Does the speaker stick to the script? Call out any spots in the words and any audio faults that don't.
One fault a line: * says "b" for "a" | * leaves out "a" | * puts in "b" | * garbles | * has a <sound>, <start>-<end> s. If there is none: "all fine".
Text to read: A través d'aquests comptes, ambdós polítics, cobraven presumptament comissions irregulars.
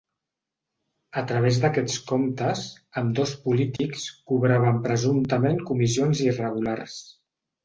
* has a dropout, 3.8-3.8 s